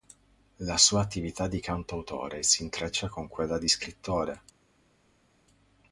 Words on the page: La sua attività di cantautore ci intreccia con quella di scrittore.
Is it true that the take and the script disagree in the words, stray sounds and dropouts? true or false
true